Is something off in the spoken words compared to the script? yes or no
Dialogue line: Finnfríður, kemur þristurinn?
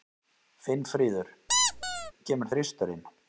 no